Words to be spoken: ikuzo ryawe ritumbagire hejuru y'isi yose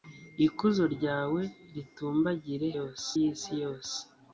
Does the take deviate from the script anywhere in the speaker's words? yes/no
yes